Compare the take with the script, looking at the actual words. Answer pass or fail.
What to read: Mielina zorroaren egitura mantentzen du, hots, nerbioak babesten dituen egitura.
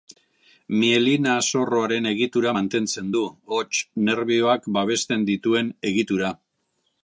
pass